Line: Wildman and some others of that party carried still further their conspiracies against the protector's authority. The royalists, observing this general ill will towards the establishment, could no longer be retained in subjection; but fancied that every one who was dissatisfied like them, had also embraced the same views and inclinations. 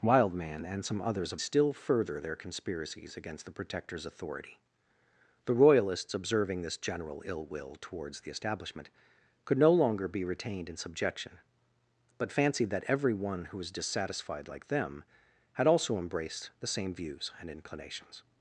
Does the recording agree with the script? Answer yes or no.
no